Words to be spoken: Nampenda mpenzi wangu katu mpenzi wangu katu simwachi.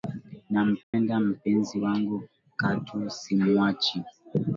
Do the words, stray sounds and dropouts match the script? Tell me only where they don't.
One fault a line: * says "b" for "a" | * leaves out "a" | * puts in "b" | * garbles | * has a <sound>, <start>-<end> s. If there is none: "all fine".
* has a dropout, 0.8-0.9 s
* leaves out "mpenzi wangu katu"